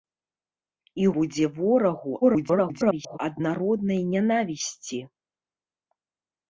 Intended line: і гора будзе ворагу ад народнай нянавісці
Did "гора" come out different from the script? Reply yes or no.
yes